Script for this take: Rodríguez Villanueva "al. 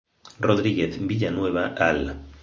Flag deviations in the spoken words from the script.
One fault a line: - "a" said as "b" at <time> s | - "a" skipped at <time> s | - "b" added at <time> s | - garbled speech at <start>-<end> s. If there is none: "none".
none